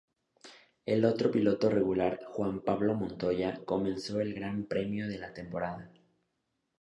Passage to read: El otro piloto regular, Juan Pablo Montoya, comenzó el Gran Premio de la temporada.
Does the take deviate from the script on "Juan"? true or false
false